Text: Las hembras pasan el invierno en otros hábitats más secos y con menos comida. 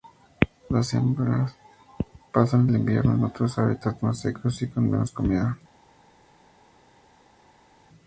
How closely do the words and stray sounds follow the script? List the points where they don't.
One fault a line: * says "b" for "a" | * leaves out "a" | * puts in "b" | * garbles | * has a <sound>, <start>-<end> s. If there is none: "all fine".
all fine